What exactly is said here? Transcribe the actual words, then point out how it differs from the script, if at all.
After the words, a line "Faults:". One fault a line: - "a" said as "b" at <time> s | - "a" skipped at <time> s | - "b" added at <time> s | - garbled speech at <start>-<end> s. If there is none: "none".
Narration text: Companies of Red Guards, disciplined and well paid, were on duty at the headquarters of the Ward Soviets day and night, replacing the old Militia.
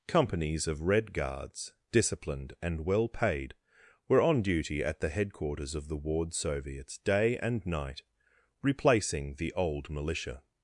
Companies of Red Guards, disciplined and well paid, were on duty at the headquarters of the Ward Soviets day and night, replacing the old Militia.
Faults:
none